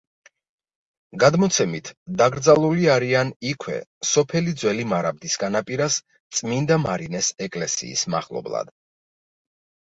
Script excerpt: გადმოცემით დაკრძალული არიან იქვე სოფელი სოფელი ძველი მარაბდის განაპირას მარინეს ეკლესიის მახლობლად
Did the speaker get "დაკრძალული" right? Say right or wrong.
right